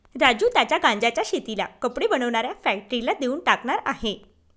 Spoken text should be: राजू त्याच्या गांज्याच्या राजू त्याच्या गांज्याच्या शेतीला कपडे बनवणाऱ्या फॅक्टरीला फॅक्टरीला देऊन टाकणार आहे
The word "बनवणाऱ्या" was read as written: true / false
true